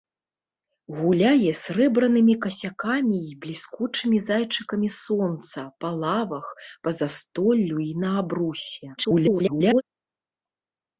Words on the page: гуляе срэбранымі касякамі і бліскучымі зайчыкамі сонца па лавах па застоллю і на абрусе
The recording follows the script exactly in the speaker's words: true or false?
false